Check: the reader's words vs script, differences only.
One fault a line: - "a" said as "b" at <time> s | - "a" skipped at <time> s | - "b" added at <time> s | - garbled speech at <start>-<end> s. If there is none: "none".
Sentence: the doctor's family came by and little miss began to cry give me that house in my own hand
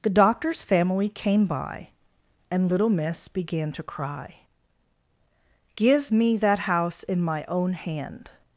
none